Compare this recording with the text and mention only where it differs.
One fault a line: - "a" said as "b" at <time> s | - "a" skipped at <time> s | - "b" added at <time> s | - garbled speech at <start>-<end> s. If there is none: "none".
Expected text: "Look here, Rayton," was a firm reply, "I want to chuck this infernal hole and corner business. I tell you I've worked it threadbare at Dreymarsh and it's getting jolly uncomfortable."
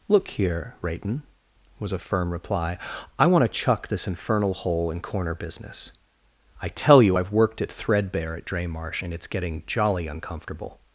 none